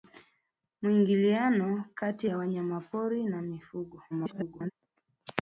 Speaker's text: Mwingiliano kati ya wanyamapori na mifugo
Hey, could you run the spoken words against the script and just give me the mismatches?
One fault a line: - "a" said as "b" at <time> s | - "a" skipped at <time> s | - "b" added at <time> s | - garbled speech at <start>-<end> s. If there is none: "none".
- garbled speech at 4.1-4.7 s